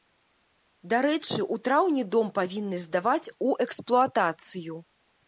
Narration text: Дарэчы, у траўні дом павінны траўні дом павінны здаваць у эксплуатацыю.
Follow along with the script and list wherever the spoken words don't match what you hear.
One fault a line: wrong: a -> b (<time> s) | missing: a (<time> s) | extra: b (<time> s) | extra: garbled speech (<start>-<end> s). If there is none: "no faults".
missing: траўні дом павінны (2.8 s)